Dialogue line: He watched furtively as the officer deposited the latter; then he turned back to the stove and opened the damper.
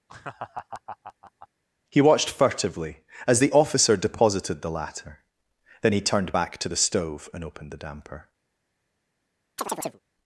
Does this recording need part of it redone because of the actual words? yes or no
no